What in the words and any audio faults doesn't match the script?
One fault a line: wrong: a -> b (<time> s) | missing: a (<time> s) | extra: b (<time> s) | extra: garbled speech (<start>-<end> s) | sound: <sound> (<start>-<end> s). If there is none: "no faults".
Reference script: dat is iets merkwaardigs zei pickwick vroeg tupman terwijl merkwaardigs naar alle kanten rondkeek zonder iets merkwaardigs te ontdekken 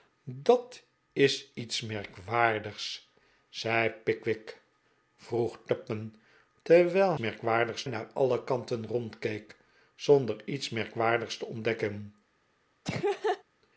sound: laugh (12.8-13.4 s)